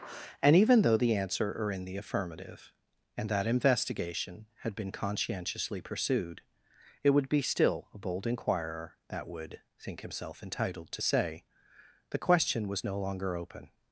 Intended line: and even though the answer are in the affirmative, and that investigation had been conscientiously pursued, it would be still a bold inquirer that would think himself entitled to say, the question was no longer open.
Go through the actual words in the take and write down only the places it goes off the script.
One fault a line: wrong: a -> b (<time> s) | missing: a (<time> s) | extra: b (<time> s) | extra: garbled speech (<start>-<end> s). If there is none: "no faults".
no faults